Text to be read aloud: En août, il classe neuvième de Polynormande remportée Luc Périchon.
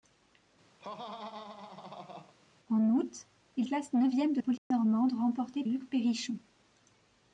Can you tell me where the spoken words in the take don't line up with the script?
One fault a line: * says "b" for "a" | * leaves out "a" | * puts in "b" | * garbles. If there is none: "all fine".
all fine